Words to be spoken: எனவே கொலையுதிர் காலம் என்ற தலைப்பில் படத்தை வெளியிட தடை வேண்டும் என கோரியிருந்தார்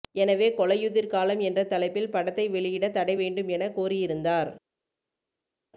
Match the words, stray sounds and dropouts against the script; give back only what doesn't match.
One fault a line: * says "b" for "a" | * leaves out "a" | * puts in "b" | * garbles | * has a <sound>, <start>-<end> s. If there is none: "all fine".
all fine